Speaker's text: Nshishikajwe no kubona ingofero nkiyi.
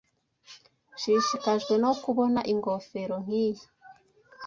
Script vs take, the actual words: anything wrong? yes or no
no